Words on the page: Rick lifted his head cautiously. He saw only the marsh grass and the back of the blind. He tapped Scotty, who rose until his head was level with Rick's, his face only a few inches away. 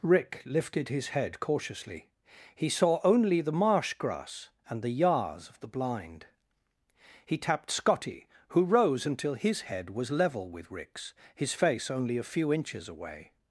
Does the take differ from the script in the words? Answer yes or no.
yes